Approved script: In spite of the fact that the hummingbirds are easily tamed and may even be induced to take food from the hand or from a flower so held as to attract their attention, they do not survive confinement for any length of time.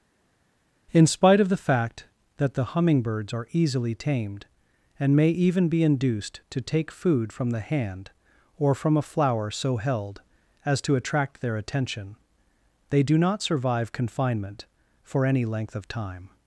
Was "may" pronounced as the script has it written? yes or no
yes